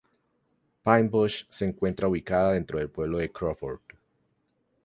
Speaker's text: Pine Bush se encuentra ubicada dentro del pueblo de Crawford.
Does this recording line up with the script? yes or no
yes